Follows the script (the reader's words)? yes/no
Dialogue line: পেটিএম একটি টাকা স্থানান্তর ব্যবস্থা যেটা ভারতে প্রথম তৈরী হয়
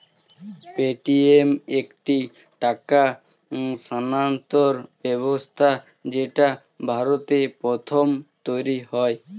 yes